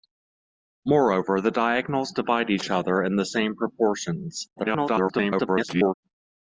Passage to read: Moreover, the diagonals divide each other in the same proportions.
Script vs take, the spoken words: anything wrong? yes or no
yes